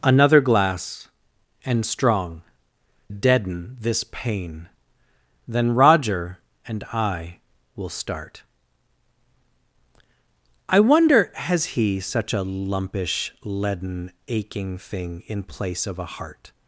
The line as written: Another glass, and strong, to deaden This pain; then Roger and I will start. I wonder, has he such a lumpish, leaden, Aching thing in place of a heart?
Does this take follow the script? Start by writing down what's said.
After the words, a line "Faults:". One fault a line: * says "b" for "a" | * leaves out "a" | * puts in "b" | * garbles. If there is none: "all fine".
Another glass, and strong, deaden This pain; then Roger and I will start. I wonder, has he such a lumpish, leaden, Aching thing in place of a heart?
Faults:
* leaves out "to"